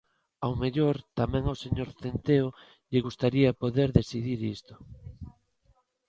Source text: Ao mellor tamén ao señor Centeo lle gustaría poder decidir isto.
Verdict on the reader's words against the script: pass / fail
pass